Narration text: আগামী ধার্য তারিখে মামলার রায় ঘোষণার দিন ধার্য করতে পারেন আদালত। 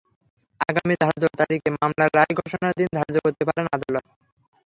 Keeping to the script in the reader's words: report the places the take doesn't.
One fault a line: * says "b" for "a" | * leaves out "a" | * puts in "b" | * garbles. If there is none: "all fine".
all fine